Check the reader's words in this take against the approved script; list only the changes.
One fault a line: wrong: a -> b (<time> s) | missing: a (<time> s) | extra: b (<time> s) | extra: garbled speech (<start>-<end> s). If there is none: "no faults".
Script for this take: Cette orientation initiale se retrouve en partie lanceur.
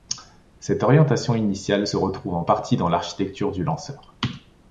extra: dans l'architecture du (2.8 s)